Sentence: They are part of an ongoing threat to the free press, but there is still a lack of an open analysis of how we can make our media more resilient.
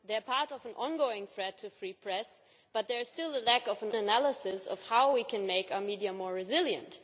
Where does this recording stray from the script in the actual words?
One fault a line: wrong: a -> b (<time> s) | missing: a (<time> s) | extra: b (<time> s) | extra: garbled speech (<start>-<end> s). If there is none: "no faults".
missing: open (3.9 s)